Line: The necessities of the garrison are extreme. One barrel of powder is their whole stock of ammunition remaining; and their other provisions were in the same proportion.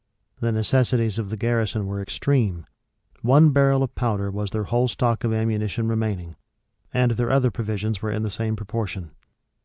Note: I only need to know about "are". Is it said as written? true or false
false